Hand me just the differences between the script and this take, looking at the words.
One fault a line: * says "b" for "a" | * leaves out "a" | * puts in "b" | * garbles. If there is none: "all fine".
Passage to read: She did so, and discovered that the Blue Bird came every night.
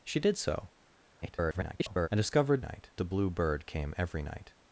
* garbles
* says "night" for "that"